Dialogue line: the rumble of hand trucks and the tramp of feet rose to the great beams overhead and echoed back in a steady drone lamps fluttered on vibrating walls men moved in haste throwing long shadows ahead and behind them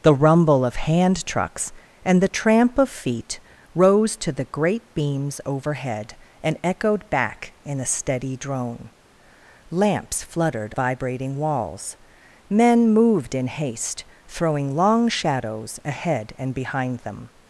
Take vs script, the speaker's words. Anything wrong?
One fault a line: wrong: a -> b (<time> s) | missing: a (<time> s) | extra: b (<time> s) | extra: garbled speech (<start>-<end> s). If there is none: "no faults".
missing: on (10.7 s)